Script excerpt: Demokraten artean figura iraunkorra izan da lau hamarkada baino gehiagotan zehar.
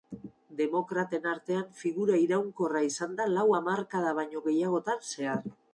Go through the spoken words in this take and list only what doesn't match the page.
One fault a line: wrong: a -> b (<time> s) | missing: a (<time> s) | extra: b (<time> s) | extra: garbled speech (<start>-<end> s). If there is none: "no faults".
no faults